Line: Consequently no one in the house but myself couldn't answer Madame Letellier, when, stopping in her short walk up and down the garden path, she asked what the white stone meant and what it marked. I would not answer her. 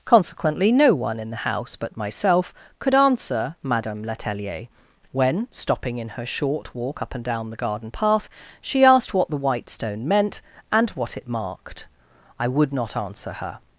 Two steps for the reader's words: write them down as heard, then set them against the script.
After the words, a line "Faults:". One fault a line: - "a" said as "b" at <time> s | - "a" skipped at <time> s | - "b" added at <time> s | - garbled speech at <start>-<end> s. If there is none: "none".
Consequently no one in the house but myself could answer Madame Letellier, when, stopping in her short walk up and down the garden path, she asked what the white stone meant and what it marked. I would not answer her.
Faults:
- "couldn't" said as "could" at 2.8 s